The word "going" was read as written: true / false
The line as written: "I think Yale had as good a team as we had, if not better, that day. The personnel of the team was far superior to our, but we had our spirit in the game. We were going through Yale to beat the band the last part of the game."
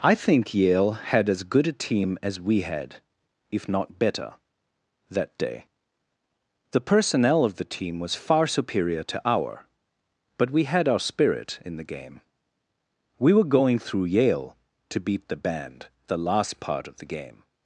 true